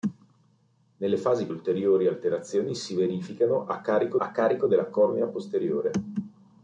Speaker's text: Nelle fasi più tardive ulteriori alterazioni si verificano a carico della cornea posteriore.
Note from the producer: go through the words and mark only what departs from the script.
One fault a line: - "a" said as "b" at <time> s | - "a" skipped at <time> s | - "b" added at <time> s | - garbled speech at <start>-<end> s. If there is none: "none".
- "più tardive" skipped at 1.5 s
- "a carico" added at 4.2 s